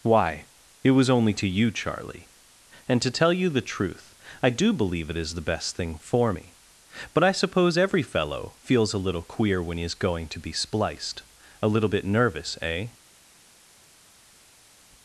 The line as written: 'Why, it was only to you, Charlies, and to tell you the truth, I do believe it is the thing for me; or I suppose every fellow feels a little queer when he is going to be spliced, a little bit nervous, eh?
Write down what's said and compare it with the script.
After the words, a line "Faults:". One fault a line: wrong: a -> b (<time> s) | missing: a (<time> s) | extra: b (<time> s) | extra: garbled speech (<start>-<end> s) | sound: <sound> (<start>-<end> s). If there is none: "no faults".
'Why, it was only to you, Charlie, and to tell you the truth, I do believe it is the best thing for me; but I suppose every fellow feels a little queer when he is going to be spliced, a little bit nervous, eh?
Faults:
wrong: Charlies -> Charlie (1.7 s)
extra: best (5.4 s)
wrong: or -> but (7.1 s)